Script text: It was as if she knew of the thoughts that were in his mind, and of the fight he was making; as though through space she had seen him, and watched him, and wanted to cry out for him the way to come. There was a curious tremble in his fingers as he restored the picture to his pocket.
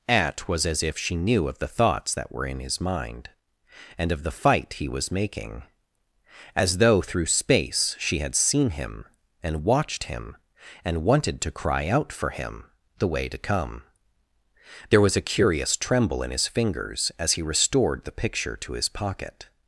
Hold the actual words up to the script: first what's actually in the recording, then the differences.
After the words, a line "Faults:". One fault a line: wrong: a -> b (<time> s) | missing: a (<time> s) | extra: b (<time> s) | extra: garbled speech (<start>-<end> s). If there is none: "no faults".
At was as if she knew of the thoughts that were in his mind, and of the fight he was making; as though through space she had seen him, and watched him, and wanted to cry out for him the way to come. There was a curious tremble in his fingers as he restored the picture to his pocket.
Faults:
wrong: It -> At (0.1 s)